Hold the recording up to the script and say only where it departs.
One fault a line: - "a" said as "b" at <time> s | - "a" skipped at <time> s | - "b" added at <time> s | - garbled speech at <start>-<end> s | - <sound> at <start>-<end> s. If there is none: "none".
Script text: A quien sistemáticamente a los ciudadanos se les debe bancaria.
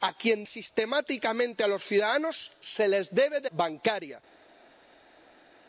none